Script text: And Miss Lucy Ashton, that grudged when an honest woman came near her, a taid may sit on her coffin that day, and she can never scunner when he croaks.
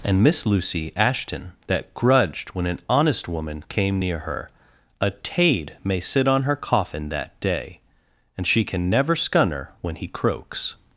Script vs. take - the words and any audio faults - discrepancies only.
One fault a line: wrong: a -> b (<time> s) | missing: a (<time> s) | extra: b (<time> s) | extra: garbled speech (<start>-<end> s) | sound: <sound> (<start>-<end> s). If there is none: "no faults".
no faults